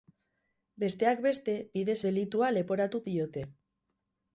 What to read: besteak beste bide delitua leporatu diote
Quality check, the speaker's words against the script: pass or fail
pass